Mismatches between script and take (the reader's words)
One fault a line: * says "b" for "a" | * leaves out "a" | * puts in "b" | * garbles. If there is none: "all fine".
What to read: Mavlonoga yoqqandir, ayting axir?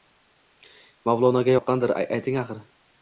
all fine